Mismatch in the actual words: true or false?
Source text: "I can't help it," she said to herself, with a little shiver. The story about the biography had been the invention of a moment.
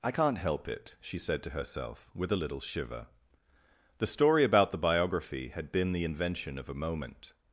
false